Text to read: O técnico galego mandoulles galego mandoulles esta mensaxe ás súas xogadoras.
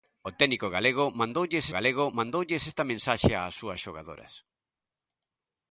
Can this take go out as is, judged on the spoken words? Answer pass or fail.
pass